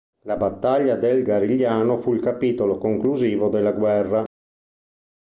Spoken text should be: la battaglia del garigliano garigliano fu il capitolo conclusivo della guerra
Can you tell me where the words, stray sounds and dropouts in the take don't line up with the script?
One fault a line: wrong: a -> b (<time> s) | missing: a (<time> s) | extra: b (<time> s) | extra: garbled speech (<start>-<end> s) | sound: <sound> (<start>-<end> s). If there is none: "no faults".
missing: garigliano (2.0 s)